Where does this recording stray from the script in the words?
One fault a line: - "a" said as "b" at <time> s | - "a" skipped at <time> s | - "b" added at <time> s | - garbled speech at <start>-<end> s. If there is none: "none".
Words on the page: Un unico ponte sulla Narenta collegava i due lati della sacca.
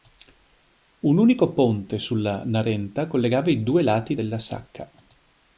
none